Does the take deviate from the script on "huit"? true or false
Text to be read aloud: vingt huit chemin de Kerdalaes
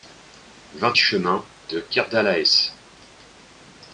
true